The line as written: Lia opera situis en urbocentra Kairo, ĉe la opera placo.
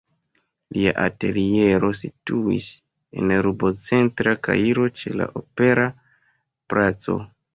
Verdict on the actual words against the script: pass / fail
fail